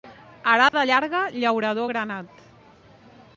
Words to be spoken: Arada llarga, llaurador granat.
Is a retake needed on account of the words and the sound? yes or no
yes